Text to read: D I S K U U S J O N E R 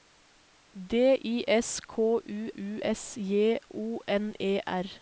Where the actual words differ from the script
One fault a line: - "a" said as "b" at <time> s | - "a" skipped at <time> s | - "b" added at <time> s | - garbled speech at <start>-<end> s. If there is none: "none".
none